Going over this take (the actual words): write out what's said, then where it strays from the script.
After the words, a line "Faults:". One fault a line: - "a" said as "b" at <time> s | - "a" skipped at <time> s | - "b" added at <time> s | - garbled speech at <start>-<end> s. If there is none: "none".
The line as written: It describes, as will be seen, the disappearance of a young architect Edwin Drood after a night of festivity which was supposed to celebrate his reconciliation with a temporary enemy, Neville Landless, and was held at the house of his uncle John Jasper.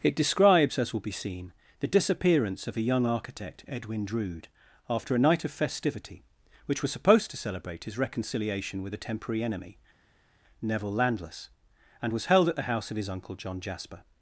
It describes, as will be seen, the disappearance of a young architect Edwin Drood after a night of festivity which was supposed to celebrate his reconciliation with a temporary enemy, Neville Landless, and was held at the house of his uncle John Jasper.
Faults:
none